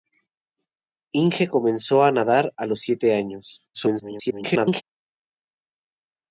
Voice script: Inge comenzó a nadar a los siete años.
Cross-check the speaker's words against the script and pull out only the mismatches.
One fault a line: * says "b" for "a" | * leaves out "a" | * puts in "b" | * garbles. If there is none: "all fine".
* garbles